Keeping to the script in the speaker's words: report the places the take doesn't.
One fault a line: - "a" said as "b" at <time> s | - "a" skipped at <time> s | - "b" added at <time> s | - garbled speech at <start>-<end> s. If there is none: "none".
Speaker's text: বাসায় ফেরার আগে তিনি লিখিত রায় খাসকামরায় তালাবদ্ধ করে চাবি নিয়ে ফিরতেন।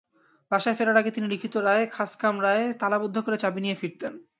none